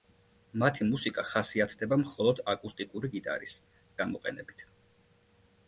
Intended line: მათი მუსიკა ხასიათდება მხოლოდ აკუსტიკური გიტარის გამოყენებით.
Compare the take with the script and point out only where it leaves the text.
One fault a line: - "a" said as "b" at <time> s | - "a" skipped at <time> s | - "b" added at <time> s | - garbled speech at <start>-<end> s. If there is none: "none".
none